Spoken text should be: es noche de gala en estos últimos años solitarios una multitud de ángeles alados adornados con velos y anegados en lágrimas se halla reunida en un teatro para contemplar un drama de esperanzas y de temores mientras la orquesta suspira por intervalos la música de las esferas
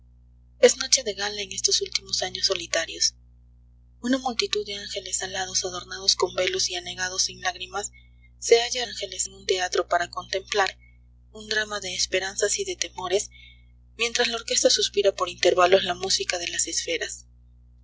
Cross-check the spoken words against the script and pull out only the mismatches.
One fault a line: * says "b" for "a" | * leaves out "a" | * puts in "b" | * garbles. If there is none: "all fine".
* says "ángeles" for "reunida"